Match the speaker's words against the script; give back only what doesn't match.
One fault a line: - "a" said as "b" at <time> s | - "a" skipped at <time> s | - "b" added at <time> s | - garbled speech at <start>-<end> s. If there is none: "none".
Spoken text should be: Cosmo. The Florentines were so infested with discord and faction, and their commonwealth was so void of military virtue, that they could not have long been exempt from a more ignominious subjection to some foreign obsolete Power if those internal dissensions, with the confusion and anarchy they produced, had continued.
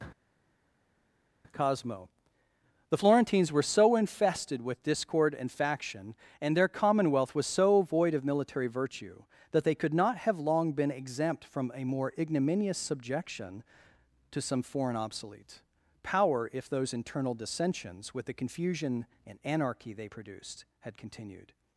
none